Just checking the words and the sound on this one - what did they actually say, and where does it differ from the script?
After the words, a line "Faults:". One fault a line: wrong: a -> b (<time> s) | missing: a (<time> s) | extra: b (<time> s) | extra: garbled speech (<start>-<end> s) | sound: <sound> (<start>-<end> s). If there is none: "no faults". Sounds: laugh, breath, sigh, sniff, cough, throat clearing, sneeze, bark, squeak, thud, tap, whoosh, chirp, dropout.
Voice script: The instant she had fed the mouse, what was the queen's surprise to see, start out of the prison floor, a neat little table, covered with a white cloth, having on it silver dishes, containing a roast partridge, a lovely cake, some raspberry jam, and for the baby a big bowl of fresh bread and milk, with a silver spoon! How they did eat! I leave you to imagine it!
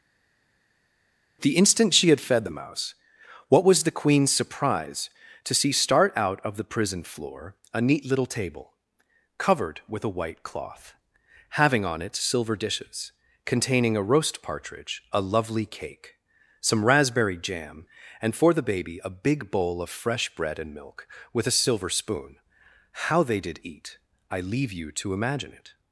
The instant she had fed the mouse, what was the queen's surprise to see, start out of the prison floor, a neat little table, covered with a white cloth, having on it silver dishes, containing a roast partridge, a lovely cake, some raspberry jam, and for the baby a big bowl of fresh bread and milk, with a silver spoon! How they did eat! I leave you to imagine it!
Faults:
no faults